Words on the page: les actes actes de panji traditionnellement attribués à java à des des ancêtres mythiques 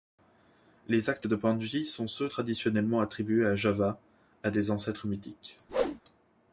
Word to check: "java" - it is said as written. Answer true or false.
true